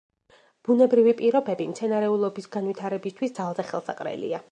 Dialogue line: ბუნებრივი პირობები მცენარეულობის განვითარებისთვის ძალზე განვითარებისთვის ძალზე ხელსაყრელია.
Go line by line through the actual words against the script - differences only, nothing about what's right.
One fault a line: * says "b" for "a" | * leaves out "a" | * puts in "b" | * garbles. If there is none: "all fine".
* leaves out "განვითარებისთვის ძალზე"